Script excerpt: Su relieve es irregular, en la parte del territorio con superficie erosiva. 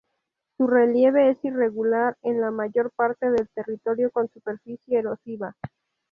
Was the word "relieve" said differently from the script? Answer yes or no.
no